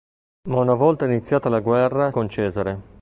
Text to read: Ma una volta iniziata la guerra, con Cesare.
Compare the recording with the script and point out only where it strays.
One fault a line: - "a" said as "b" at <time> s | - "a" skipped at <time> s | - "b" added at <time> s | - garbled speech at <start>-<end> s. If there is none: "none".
none